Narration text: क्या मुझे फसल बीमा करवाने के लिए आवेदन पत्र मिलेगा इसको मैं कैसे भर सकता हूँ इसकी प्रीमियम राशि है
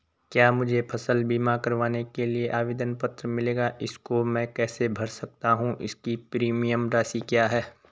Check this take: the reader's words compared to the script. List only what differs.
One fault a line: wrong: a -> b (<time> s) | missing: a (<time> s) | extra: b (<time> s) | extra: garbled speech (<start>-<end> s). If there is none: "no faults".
extra: क्या (7.2 s)